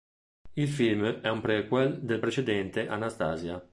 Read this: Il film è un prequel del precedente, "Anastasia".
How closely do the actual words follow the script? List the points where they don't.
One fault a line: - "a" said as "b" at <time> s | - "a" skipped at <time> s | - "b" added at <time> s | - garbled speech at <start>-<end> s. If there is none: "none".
none